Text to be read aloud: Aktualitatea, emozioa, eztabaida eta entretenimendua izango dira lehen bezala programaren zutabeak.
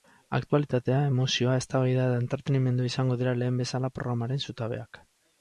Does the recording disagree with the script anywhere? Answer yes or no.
no